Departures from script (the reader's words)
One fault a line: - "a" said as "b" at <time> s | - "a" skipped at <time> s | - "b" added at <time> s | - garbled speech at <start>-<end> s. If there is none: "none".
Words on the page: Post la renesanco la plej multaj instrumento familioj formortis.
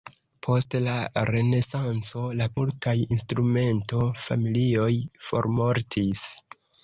- "plej" skipped at 2.5 s